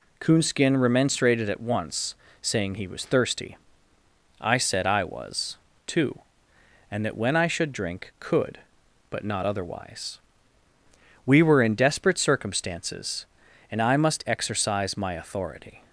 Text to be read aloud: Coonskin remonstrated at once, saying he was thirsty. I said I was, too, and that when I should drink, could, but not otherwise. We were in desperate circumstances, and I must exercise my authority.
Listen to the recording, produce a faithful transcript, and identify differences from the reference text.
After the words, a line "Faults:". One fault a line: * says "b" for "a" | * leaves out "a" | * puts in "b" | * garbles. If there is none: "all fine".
Coonskin remonstrated at once, saying he was thirsty. I said I was, too, and that when I should drink, could, but not otherwise. We were in desperate circumstances, and I must exercise my authority.
Faults:
all fine